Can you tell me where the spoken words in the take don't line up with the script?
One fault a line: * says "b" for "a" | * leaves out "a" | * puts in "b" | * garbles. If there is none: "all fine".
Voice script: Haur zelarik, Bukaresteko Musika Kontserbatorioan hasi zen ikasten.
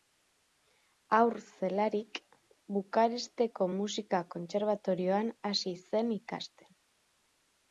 all fine